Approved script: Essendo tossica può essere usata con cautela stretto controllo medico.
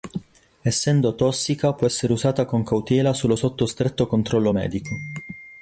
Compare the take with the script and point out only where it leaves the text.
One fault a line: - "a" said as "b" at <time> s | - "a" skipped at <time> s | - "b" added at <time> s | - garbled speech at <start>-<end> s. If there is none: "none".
- "solo sotto" added at 3.1 s